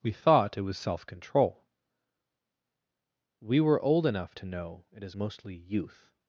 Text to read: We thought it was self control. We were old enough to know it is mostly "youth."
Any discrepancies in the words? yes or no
no